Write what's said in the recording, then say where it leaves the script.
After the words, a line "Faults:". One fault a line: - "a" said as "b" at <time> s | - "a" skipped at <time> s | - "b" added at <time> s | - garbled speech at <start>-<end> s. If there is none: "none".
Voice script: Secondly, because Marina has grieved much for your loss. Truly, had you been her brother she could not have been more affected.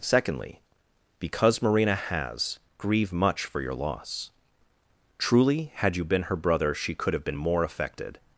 Secondly, because Marina has grieve much for your loss. Truly, had you been her brother she could have been more affected.
Faults:
- "grieved" said as "grieve" at 2.8 s
- "not" skipped at 7.1 s